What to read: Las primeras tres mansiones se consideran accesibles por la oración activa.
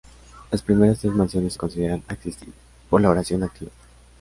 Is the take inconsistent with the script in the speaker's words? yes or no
no